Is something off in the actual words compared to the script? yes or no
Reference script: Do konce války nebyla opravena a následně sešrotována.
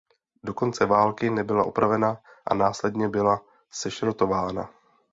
yes